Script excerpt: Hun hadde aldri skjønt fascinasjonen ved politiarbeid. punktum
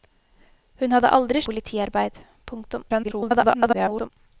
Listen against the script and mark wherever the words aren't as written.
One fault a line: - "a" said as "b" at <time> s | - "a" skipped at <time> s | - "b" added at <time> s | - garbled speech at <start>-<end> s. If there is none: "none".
- "skjønt fascinasjonen ved" skipped at 1.4 s
- garbled speech at 2.9-4.1 s